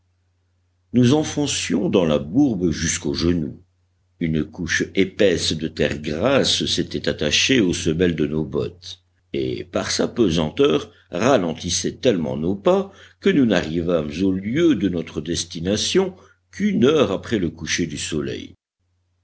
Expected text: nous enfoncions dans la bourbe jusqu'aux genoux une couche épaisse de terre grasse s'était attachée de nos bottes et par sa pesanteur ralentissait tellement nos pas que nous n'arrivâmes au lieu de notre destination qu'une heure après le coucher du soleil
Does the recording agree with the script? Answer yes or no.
no